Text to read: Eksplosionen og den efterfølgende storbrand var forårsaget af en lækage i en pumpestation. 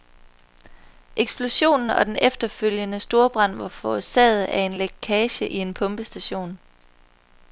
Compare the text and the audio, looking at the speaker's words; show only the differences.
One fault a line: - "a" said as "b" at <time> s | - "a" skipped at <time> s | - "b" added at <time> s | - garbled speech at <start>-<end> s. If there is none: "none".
none